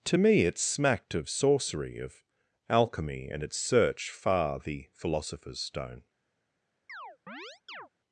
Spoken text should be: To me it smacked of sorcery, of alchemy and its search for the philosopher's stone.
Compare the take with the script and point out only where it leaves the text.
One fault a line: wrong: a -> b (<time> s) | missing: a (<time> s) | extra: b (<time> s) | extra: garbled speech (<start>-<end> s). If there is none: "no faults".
wrong: for -> far (4.1 s)